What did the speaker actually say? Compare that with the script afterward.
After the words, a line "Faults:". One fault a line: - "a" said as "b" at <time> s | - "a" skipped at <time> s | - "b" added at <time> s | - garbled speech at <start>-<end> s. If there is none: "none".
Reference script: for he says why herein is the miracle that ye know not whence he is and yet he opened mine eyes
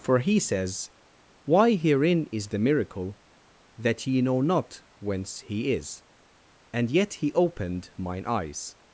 for he says why herein is the miracle that ye know not whence he is and yet he opened mine eyes
Faults:
none